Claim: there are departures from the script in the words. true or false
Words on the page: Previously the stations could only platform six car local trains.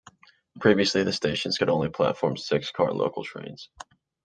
false